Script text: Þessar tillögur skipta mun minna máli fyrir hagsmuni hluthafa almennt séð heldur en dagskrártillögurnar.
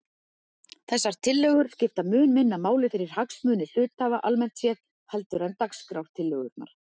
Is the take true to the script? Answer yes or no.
yes